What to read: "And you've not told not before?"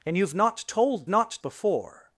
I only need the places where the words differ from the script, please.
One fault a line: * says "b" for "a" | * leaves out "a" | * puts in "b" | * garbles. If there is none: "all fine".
all fine